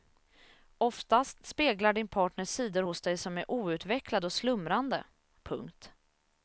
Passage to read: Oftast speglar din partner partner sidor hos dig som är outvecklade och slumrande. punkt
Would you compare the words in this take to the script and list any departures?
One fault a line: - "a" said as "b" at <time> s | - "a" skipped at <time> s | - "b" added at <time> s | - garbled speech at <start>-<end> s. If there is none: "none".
- "partner" skipped at 2.5 s